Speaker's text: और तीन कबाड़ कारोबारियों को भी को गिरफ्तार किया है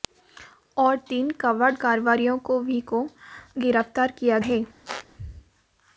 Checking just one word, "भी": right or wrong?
right